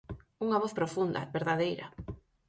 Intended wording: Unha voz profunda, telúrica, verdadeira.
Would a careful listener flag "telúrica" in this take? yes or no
yes